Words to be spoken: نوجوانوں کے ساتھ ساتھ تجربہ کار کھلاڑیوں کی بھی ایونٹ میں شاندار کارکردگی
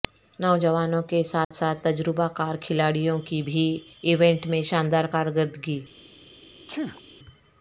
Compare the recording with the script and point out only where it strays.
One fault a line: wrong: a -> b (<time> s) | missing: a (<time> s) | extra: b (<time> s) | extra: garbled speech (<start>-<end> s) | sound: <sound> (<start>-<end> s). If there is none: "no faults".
sound: dropout (1.4-1.5 s)
sound: sneeze (6.7-7.0 s)